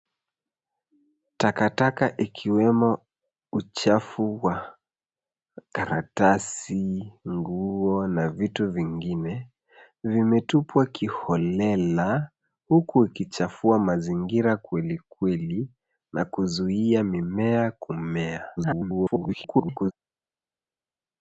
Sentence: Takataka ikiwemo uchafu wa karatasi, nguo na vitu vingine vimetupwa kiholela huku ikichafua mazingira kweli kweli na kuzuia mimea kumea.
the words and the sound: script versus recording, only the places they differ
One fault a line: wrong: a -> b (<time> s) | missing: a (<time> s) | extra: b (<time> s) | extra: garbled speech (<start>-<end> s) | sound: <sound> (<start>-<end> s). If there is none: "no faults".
extra: garbled speech (18.6-19.9 s)